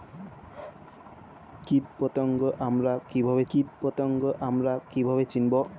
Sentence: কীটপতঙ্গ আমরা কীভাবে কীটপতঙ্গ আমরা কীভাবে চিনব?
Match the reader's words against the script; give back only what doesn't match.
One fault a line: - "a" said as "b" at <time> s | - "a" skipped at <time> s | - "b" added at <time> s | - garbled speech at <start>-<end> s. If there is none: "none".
none